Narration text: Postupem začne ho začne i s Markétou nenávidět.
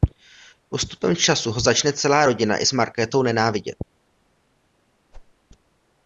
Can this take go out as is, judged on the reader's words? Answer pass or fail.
fail